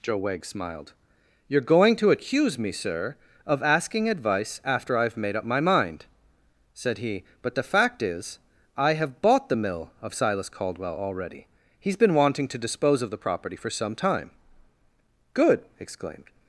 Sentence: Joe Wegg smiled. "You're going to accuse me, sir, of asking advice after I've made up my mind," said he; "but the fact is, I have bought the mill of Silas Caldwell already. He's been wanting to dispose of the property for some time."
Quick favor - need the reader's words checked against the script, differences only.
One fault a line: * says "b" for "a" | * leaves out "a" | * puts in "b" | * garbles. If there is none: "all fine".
* puts in "Good exclaimed"